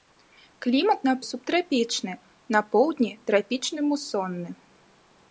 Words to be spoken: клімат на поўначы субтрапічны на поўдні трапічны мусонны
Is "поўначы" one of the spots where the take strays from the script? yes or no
yes